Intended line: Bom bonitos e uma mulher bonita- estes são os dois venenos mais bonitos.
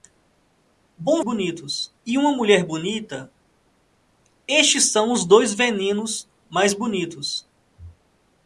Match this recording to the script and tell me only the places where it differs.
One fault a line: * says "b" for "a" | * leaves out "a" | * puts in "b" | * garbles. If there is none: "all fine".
all fine